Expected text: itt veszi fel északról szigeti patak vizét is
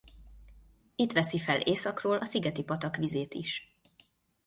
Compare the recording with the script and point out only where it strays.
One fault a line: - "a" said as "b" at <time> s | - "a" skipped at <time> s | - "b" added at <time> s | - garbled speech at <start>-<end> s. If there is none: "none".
- "a" added at 2.1 s